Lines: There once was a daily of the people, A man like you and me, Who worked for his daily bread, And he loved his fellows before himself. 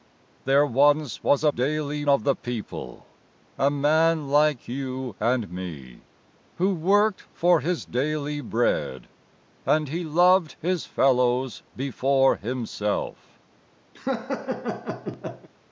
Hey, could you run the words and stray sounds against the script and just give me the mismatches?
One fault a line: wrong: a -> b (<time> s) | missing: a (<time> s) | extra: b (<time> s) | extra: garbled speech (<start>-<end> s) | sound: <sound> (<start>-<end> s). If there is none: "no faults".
sound: laugh (13.9-15.5 s)